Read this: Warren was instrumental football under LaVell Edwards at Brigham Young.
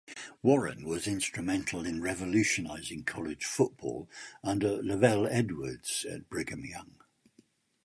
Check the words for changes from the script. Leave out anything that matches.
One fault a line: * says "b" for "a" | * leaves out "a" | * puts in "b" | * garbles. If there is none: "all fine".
* puts in "in revolutionizing college"